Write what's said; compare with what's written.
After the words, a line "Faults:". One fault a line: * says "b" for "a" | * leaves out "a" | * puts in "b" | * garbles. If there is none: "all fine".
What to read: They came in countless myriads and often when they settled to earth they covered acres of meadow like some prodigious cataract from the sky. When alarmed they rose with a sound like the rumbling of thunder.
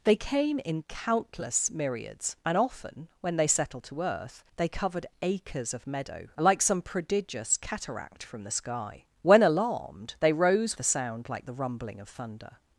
They came in countless myriads and often when they settled to earth they covered acres of meadow like some prodigious cataract from the sky. When alarmed they rose a sound like the rumbling of thunder.
Faults:
* leaves out "with"